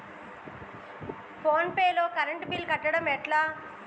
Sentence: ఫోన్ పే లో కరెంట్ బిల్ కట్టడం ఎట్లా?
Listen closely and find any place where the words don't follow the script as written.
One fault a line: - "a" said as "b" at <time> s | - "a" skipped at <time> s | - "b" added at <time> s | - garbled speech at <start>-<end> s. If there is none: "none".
none